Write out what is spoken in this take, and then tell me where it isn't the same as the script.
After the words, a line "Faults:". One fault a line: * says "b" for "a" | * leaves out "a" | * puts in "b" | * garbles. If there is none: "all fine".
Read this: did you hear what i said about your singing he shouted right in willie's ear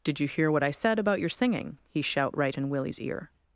did you hear what i said about your singing he shout right in willie's ear
Faults:
* says "shout" for "shouted"